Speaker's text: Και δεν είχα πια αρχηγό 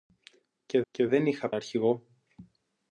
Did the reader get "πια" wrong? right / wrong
wrong